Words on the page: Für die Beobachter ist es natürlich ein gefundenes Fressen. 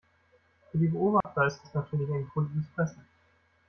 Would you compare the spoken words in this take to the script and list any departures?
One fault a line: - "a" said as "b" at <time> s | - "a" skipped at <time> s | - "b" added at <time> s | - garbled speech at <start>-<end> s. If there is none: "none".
none